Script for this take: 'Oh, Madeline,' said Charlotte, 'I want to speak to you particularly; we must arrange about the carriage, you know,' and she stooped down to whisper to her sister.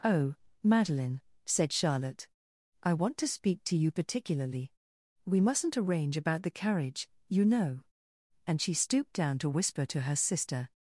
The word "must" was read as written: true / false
false